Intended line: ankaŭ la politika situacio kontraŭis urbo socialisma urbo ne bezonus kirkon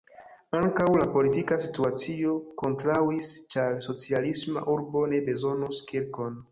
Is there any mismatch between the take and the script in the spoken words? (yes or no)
yes